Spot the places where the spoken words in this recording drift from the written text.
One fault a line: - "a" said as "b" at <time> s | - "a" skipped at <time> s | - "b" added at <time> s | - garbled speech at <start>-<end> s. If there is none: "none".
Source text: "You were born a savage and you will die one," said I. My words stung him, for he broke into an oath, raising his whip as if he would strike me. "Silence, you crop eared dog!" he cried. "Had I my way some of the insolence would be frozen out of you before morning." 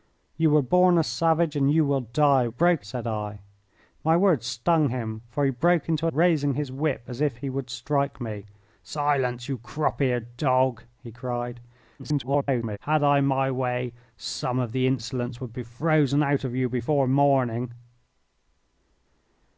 - "one" said as "broke" at 2.5 s
- "an oath" skipped at 6.1 s
- garbled speech at 12.0-12.8 s